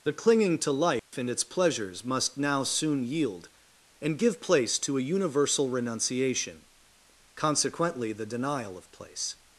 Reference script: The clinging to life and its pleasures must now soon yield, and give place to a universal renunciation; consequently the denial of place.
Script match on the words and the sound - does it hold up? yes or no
no